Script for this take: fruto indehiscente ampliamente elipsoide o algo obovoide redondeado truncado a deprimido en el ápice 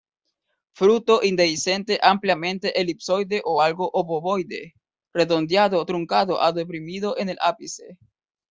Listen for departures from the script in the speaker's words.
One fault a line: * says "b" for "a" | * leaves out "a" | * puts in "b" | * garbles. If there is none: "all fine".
all fine